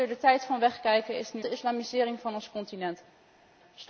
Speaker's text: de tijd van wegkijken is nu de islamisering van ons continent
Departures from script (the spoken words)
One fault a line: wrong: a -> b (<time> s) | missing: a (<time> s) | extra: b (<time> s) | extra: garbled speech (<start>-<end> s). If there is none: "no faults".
no faults